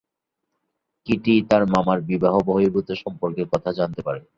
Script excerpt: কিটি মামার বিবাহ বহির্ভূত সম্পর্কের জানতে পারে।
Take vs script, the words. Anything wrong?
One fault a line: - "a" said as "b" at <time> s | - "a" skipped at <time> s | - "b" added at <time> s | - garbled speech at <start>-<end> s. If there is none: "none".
- "তার" added at 1.5 s
- "কথা" added at 3.5 s